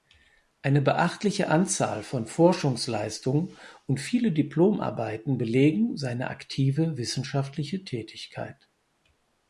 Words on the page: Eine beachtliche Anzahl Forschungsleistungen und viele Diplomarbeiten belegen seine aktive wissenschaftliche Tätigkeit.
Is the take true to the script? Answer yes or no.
no